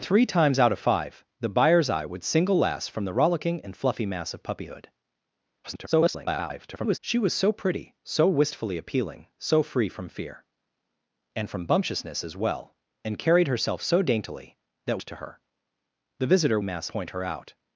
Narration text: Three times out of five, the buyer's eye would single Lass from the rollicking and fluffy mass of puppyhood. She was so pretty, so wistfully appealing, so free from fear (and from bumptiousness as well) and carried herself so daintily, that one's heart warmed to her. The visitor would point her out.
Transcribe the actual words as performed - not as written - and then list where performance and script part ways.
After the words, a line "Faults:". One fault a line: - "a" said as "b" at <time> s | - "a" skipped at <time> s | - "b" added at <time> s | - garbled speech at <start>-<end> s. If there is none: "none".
Three times out of five, the buyer's eye would single Lass from the rollicking and fluffy mass of puppyhood. [garbled] She was so pretty, so wistfully appealing, so free from fear (and from bumptiousness as well) and carried herself so daintily, that to her. The visitor mass point her out.
Faults:
- garbled speech at 5.6-7.0 s
- "one's heart warmed" skipped at 15.0 s
- "would" said as "mass" at 16.6 s